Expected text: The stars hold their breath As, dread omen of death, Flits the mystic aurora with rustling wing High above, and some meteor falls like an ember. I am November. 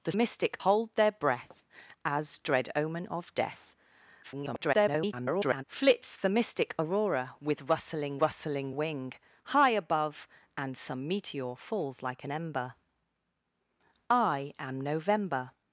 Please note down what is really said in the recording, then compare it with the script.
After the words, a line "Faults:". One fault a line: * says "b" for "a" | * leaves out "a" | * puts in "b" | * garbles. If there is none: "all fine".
The mystic hold their breath As, dread omen of death, [garbled] Flits the mystic aurora with rustling rustling wing High above, and some meteor falls like an ember. I am November.
Faults:
* says "mystic" for "stars"
* garbles
* puts in "rustling"